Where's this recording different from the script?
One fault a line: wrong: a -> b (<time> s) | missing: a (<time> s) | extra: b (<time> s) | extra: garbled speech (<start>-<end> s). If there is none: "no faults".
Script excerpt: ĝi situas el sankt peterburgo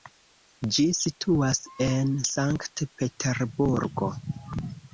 wrong: el -> en (1.9 s)